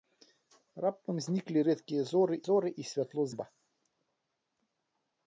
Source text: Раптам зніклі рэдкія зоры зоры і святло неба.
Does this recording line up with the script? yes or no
yes